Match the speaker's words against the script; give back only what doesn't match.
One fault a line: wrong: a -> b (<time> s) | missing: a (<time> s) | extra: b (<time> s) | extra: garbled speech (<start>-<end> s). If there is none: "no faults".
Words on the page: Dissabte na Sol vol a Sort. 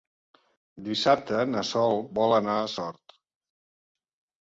extra: anar (2.4 s)